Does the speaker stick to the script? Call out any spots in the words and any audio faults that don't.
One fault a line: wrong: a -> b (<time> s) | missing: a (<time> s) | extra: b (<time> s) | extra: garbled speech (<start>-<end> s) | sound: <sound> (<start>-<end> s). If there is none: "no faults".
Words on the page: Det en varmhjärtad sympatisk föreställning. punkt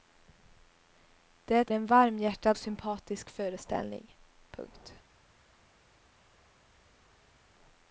no faults